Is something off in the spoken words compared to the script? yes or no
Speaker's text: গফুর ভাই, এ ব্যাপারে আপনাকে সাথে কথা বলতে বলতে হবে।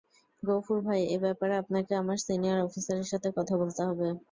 yes